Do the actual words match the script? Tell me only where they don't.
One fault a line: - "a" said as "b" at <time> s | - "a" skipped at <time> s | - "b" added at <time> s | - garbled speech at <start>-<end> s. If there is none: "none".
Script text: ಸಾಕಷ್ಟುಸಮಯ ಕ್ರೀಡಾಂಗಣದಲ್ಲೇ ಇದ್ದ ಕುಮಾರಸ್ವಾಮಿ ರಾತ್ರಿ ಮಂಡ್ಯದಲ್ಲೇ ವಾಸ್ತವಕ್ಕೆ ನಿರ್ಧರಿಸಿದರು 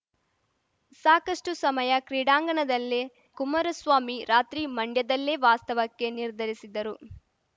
- "ಇದ್ದ" skipped at 3.0 s